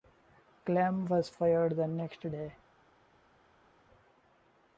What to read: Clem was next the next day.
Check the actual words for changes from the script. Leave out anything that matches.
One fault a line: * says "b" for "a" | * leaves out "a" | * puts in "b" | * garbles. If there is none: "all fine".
* says "fired" for "next"